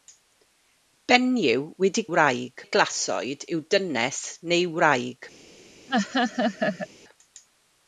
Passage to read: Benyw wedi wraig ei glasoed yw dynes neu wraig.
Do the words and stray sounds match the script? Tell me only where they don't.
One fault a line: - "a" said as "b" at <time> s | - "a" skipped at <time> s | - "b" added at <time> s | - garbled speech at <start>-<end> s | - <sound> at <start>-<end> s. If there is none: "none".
- laugh at 5.9-6.9 s